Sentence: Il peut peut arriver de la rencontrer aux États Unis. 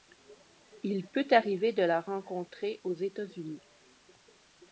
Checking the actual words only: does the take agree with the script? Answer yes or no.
no